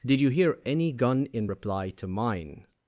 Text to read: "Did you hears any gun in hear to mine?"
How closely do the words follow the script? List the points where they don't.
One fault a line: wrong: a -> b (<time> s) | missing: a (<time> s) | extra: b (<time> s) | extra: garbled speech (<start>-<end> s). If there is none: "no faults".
wrong: hears -> hear (0.3 s)
wrong: hear -> reply (1.4 s)